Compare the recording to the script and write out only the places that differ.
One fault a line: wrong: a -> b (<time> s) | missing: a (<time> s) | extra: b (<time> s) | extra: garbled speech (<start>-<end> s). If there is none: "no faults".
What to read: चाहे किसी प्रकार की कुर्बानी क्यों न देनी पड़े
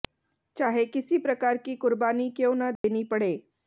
no faults